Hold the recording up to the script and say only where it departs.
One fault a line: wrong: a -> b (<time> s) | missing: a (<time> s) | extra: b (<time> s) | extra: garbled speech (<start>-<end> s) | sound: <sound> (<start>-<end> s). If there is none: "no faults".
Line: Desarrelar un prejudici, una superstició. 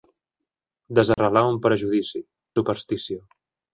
sound: dropout (1.1-1.2 s)
missing: una (2.2 s)